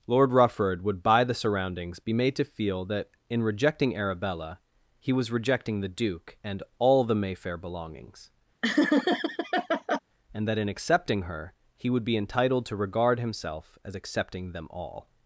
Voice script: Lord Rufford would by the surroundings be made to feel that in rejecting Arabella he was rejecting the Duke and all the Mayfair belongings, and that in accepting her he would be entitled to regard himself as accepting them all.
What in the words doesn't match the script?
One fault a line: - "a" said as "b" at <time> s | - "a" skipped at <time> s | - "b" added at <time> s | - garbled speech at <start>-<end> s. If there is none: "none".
none